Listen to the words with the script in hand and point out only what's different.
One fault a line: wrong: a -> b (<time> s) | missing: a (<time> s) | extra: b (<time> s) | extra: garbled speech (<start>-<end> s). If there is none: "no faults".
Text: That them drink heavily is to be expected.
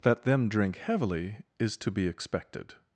no faults